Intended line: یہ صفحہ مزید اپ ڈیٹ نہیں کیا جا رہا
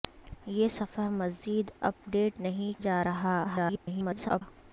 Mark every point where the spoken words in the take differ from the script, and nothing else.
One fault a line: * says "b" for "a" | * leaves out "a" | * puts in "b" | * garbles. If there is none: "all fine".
* leaves out "کیا"
* garbles